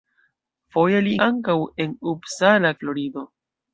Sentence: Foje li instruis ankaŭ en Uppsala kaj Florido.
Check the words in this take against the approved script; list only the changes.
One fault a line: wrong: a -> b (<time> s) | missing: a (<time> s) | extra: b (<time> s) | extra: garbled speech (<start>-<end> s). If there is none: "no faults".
missing: instruis (1.1 s)
missing: kaj (2.8 s)